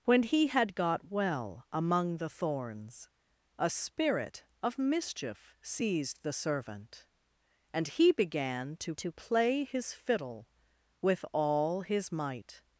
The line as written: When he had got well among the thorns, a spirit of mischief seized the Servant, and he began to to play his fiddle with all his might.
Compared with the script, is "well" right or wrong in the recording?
right